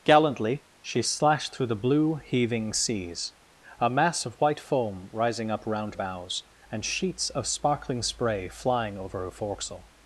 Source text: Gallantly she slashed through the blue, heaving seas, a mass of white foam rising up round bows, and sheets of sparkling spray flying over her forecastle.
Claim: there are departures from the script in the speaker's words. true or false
false